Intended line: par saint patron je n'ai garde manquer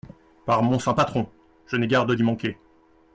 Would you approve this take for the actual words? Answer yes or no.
no